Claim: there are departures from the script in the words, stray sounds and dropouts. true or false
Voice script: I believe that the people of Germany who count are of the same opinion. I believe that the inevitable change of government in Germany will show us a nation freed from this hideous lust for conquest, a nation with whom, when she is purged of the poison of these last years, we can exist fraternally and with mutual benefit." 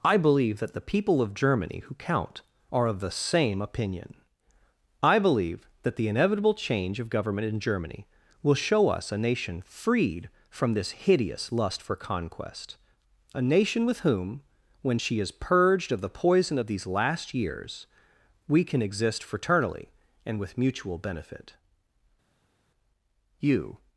true